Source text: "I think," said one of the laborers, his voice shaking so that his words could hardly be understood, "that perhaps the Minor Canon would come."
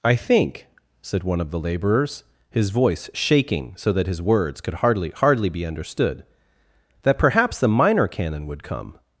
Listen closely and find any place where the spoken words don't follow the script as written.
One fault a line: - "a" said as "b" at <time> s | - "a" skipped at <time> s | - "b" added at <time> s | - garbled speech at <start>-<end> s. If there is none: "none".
- "hardly" added at 5.1 s